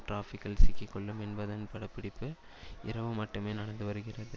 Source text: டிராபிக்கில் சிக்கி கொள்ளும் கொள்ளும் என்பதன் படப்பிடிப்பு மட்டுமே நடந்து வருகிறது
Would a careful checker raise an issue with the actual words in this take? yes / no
yes